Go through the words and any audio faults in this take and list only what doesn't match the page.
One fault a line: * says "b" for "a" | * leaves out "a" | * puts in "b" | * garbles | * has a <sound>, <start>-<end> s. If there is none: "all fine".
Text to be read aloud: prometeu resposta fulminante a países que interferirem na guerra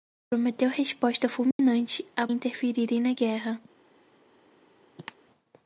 * has a dropout, 1.5-1.6 s
* leaves out "países que"
* has a cough, 5.0-5.1 s